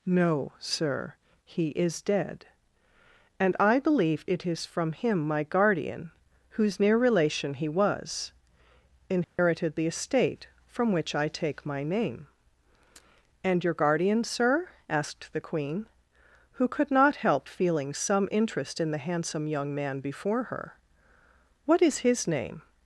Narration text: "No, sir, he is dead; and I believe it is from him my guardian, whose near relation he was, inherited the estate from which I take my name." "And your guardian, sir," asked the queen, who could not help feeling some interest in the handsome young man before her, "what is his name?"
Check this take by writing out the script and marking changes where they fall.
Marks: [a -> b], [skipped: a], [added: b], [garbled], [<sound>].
"No, sir, he is dead; and I believe it is from him my guardian, whose near relation he was, inherited [dropout] the estate from which I take my name." "And your guardian, sir," asked the queen, who could not help feeling some interest in the handsome young man before her, "what is his name?"